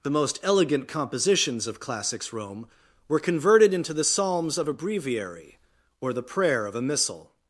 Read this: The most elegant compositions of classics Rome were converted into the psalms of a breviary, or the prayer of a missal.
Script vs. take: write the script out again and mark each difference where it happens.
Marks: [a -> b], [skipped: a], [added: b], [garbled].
The most elegant compositions of classics Rome were converted into the psalms of a breviary, or the prayer of a missal.